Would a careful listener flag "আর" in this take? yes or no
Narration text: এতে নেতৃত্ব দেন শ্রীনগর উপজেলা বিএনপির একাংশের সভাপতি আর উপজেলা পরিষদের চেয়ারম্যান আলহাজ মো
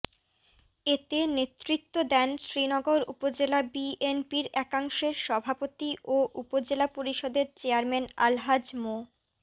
yes